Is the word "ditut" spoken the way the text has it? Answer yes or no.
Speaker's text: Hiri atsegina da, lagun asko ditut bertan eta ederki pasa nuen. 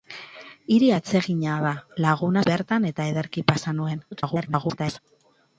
no